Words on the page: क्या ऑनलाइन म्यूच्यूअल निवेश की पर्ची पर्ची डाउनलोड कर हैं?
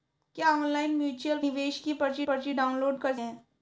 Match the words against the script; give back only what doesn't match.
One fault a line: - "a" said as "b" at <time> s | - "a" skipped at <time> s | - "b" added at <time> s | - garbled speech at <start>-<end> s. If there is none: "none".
none